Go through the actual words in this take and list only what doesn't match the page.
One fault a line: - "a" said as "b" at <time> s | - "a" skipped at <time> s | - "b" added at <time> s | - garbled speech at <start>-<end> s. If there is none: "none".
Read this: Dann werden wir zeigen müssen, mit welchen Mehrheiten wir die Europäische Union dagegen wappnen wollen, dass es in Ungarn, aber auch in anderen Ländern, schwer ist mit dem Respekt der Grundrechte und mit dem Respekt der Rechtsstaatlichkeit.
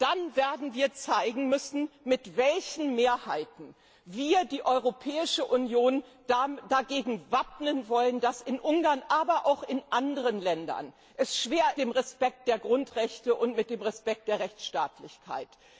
- "ist mit" skipped at 11.7 s